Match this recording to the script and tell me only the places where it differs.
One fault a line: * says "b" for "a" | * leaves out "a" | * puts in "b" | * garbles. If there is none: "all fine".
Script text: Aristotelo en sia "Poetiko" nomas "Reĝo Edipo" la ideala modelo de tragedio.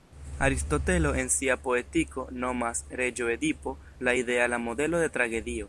all fine